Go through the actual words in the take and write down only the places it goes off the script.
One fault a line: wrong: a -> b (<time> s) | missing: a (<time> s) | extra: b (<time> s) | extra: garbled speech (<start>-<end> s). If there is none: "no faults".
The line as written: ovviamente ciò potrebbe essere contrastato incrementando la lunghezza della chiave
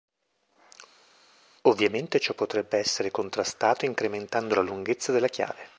no faults